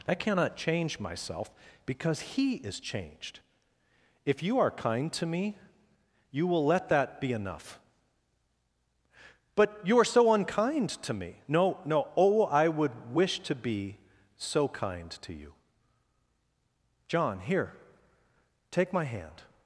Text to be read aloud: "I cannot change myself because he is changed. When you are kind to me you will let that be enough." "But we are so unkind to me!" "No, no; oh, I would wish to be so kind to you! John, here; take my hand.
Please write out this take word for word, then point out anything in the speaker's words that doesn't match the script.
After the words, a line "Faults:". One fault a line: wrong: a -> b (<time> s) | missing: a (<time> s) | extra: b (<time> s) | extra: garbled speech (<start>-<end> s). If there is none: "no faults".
"I cannot change myself because he is changed. If you are kind to me you will let that be enough." "But you are so unkind to me!" "No, no; oh, I would wish to be so kind to you! John, here; take my hand.
Faults:
wrong: When -> If (4.2 s)
wrong: we -> you (9.8 s)